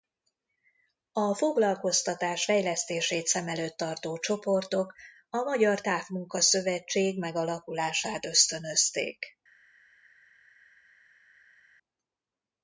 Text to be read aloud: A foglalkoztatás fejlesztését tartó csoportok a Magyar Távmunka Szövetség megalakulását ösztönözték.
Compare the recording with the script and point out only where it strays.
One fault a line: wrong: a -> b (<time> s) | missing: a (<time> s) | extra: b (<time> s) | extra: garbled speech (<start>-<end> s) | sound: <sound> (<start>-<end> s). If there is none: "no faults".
extra: szem előtt (3.3 s)